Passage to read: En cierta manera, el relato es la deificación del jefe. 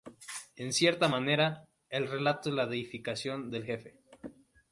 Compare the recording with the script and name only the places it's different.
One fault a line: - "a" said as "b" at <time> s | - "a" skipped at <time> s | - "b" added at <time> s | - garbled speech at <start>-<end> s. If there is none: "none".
none